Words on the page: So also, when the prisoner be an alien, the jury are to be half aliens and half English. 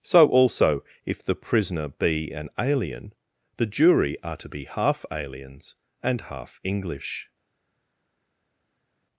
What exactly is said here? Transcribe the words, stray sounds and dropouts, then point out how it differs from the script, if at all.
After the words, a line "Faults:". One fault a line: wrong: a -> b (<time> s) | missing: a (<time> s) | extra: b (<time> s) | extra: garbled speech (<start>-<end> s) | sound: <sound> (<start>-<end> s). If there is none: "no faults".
So also, if the prisoner be an alien, the jury are to be half aliens and half English.
Faults:
wrong: when -> if (1.1 s)